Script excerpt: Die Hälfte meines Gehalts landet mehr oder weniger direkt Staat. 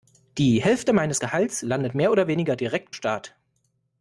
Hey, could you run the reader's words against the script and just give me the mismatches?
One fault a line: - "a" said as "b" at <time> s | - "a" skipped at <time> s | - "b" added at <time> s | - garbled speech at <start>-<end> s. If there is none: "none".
none